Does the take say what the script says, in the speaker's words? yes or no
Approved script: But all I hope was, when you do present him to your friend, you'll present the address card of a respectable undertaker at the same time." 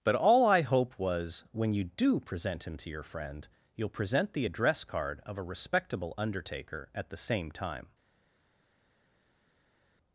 yes